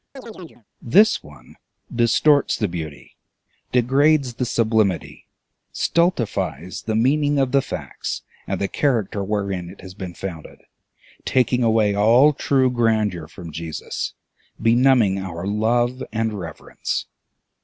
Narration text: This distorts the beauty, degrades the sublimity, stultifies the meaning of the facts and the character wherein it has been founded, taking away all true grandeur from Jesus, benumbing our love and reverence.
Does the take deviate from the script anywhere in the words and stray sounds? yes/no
yes